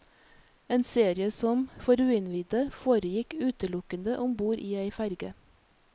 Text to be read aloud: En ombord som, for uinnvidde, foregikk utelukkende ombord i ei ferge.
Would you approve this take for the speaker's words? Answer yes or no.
no